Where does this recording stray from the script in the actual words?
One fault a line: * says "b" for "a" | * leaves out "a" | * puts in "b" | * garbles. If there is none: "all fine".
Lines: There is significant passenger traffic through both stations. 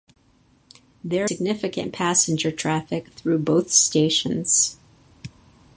* leaves out "is"